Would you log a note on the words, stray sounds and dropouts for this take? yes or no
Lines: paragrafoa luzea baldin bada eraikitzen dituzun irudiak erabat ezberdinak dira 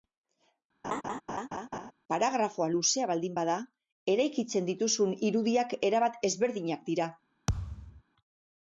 yes